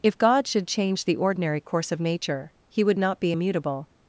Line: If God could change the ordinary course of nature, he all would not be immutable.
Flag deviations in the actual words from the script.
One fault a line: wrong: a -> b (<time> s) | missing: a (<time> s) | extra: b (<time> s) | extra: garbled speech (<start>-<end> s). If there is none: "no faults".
wrong: could -> should (0.5 s)
missing: all (2.8 s)